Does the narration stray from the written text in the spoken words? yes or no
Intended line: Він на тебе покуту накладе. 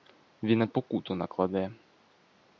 yes